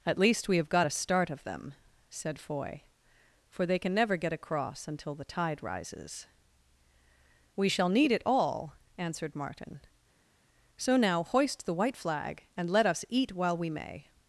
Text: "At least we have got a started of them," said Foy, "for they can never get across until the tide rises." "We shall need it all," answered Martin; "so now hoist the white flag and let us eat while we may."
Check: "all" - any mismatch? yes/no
no